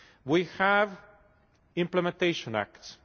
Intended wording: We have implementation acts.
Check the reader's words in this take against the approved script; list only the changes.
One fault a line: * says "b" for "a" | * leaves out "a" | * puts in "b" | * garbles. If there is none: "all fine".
all fine